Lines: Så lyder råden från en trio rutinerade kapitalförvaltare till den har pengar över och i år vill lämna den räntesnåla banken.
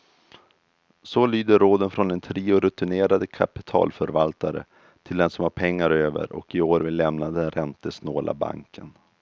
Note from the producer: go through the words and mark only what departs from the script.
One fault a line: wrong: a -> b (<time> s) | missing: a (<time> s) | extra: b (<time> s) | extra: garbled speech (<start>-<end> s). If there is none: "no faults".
extra: som (5.3 s)